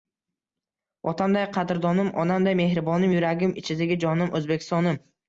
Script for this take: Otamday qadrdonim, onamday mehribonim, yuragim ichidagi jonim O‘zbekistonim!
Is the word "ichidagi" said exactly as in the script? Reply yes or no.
yes